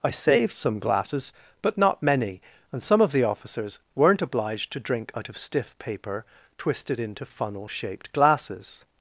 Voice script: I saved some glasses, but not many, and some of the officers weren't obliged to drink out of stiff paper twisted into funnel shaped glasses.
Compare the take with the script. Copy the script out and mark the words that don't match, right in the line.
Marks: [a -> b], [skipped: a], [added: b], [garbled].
I saved some glasses, but not many, and some of the officers weren't obliged to drink out of stiff paper twisted into funnel shaped glasses.